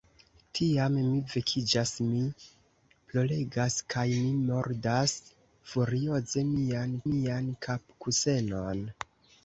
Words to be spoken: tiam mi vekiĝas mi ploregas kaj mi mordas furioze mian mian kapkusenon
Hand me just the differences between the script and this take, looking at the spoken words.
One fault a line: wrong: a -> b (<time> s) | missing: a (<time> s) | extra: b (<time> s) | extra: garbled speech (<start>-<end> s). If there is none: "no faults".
no faults